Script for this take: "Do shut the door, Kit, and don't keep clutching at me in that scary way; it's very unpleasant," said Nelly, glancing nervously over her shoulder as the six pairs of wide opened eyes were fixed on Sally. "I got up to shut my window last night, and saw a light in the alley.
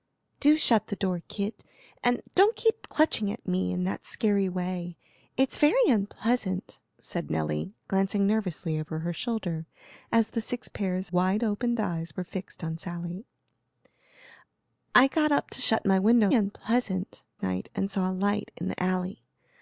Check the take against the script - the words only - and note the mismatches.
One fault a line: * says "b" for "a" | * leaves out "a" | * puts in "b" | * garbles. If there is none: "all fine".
* leaves out "of"
* says "unpleasant" for "last"